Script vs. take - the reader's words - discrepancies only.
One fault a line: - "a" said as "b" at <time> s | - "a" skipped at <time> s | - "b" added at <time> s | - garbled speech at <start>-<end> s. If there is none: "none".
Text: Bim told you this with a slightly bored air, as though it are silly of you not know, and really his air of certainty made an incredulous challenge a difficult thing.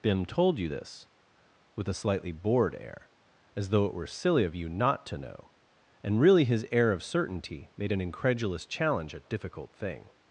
- "are" said as "were" at 3.9 s
- "to" added at 5.1 s